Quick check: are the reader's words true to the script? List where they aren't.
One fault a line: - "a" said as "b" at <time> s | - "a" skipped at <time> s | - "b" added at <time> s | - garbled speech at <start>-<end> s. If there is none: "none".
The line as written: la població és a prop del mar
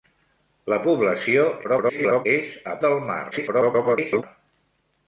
- garbled speech at 1.6-2.3 s
- "prop" skipped at 2.7 s
- garbled speech at 3.3-4.2 s